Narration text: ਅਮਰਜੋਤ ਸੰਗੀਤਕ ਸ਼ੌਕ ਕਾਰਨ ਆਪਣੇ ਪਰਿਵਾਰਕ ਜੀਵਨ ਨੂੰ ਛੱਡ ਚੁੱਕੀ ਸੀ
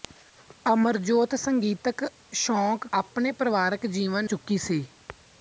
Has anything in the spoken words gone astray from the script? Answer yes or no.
yes